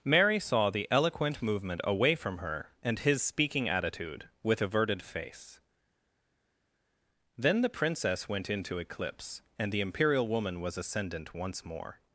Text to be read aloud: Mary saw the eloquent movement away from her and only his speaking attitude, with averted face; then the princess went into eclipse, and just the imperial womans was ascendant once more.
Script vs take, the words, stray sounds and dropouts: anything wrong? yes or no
yes